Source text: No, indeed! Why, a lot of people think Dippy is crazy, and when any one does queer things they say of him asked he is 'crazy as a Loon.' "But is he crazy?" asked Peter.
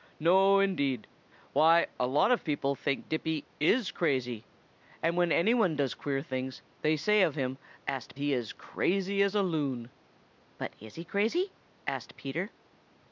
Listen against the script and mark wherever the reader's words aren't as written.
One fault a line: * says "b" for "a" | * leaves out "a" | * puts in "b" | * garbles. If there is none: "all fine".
all fine